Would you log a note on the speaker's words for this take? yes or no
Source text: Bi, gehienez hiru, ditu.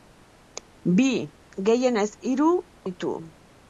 no